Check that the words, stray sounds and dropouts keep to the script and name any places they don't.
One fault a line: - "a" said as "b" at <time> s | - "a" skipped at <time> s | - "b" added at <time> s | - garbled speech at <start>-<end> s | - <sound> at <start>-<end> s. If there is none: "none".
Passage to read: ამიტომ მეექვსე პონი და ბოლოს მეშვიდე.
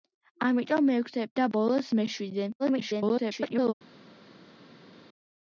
- "პონი" skipped at 1.3 s
- garbled speech at 2.6-3.7 s